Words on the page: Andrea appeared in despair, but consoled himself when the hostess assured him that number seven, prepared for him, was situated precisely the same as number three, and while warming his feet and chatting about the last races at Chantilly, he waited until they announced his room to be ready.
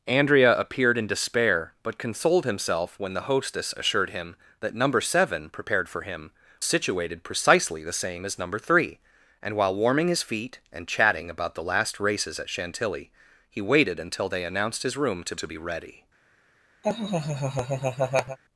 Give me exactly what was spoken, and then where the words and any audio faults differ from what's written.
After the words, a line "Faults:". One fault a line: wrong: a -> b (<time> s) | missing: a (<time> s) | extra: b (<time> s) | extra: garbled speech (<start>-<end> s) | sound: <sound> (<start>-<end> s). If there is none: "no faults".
Andrea appeared in despair, but consoled himself when the hostess assured him that number seven, prepared for him, situated precisely the same as number three, and while warming his feet and chatting about the last races at Chantilly, he waited until they announced his room to to be ready.
Faults:
missing: was (6.3 s)
extra: to (15.3 s)
sound: laugh (16.8-18.4 s)